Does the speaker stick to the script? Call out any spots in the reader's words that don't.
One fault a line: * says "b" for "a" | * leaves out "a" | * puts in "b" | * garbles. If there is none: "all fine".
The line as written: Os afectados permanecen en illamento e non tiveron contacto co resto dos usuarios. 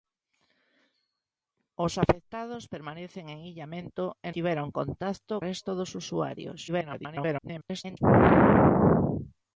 * leaves out "non"
* leaves out "co"
* garbles